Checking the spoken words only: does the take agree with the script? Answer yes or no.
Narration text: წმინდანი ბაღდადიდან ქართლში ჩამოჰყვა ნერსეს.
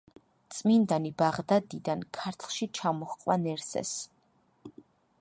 yes